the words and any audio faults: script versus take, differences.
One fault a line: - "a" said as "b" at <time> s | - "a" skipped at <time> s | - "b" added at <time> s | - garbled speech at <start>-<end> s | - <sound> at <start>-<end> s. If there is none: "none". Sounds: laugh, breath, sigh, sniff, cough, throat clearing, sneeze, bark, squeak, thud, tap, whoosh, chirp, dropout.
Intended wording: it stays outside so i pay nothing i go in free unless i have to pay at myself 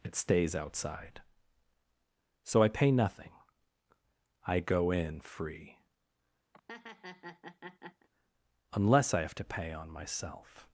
- laugh at 6.5-8.1 s
- "at" said as "on" at 9.7 s